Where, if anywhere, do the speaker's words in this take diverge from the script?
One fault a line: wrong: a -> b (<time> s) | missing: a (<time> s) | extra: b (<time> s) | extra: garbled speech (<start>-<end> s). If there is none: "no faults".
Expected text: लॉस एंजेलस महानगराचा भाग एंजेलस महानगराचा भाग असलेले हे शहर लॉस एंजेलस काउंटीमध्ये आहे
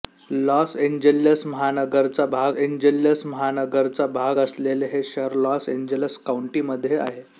no faults